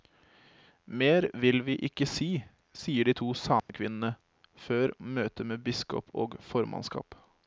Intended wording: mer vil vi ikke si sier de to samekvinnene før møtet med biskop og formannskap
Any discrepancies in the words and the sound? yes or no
yes